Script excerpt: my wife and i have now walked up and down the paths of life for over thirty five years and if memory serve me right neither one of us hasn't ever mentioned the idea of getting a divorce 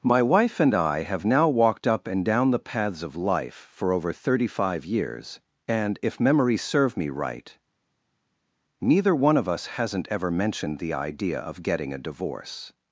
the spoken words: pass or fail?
pass